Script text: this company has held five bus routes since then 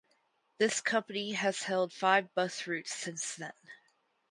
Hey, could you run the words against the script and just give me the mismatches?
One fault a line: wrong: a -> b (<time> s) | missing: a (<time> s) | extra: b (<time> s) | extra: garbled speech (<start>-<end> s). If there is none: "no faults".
no faults